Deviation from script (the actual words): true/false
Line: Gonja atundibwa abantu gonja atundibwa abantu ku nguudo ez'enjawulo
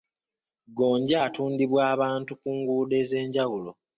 true